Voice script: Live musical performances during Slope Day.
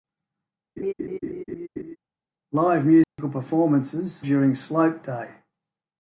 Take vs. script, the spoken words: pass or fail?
pass